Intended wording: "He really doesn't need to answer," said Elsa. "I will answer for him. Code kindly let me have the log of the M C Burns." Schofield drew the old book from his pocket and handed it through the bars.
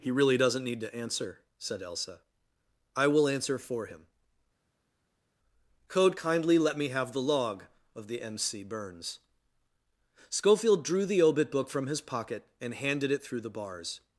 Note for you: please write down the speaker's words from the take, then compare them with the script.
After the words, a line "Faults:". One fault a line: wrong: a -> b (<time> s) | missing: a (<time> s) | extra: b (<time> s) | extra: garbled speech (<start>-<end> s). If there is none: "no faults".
"He really doesn't need to answer," said Elsa. "I will answer for him. Code kindly let me have the log of the M C Burns." Schofield drew the obit book from his pocket and handed it through the bars.
Faults:
wrong: old -> obit (11.2 s)